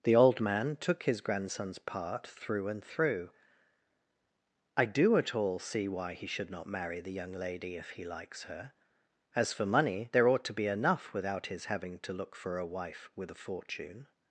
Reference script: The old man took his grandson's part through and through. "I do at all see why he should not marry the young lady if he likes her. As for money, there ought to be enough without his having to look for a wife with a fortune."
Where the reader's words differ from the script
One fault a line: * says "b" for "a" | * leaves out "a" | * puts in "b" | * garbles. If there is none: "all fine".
all fine